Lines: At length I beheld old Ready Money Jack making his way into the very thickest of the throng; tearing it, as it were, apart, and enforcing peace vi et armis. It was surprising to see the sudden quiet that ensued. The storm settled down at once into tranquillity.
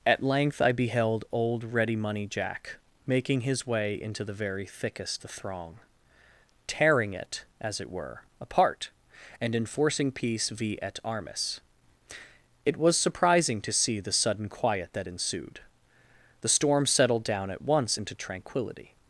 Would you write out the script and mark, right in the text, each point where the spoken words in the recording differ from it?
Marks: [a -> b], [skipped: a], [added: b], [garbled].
At length I beheld old Ready Money Jack making his way into the very thickest [skipped: of] the throng; tearing it, as it were, apart, and enforcing peace vi et armis. It was surprising to see the sudden quiet that ensued. The storm settled down at once into tranquillity.